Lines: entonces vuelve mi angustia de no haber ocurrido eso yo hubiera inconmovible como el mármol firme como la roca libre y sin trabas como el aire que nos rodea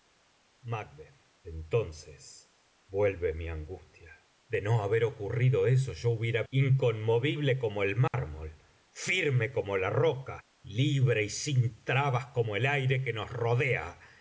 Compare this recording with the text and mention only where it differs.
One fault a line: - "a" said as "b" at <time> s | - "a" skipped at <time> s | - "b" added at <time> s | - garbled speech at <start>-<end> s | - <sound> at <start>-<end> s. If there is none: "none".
- dropout at 8.1-8.1 s